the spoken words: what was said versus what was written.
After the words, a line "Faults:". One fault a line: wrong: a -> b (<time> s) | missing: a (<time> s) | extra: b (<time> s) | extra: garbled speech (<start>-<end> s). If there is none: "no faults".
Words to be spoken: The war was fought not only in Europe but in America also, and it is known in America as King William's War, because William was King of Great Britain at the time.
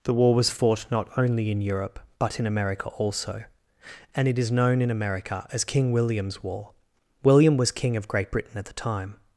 The war was fought not only in Europe but in America also, and it is known in America as King William's War, William was King of Great Britain at the time.
Faults:
missing: because (6.7 s)